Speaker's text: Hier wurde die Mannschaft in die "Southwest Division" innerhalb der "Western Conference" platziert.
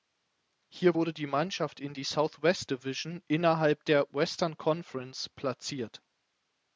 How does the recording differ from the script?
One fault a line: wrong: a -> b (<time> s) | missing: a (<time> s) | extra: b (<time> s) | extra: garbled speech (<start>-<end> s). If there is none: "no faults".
no faults